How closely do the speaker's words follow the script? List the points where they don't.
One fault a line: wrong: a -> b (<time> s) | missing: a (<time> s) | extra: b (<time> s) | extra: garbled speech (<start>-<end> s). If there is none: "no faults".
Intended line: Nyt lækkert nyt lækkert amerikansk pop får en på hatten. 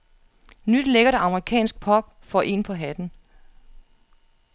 missing: nyt lækkert (1.1 s)